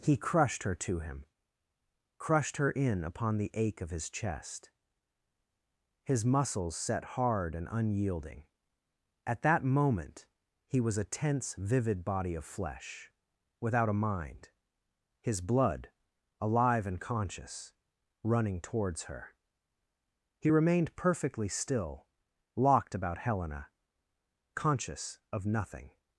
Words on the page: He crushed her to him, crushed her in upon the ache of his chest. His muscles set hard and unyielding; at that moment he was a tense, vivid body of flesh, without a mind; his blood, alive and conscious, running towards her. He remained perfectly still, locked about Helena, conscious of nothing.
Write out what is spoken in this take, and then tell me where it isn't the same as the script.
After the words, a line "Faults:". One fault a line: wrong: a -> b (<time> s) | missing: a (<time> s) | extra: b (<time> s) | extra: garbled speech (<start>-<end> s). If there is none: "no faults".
He crushed her to him, crushed her in upon the ache of his chest. His muscles set hard and unyielding; at that moment he was a tense, vivid body of flesh, without a mind; his blood, alive and conscious, running towards her. He remained perfectly still, locked about Helena, conscious of nothing.
Faults:
no faults